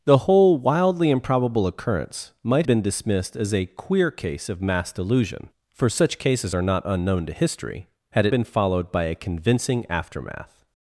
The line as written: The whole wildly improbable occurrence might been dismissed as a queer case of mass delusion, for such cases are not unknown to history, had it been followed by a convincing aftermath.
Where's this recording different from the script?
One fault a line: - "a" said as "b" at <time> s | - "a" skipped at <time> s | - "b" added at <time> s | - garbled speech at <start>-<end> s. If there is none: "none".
none